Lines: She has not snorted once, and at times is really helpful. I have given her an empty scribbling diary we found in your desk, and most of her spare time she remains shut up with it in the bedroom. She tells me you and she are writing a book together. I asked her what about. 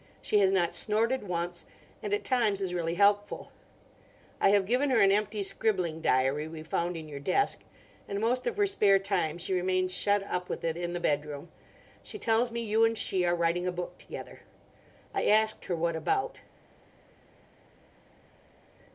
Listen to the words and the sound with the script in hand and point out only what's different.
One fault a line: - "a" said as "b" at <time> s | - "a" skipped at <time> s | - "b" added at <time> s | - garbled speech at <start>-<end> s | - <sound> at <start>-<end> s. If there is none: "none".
none